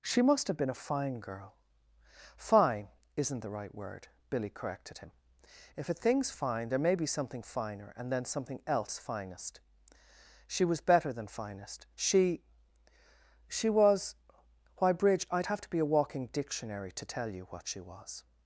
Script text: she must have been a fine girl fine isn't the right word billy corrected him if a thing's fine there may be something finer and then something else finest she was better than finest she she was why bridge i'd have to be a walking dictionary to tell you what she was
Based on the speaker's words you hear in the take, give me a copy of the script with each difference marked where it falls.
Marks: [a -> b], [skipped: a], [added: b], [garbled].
she must have been a fine girl fine isn't the right word billy corrected him if a thing's fine there may be something finer and then something else finest she was better than finest she she was why bridge i'd have to be a walking dictionary to tell you what she was